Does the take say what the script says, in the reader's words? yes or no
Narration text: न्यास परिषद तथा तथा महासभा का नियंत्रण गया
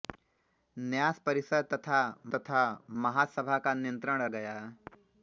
yes